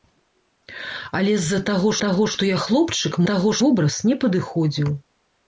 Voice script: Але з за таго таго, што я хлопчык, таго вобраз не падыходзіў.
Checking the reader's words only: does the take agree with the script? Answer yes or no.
yes